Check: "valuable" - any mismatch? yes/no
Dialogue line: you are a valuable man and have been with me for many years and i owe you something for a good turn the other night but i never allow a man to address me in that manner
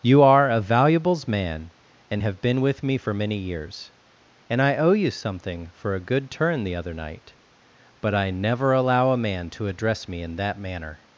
yes